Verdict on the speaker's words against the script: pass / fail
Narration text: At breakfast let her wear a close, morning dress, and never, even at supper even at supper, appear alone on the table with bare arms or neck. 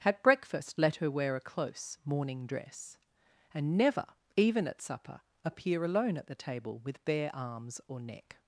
fail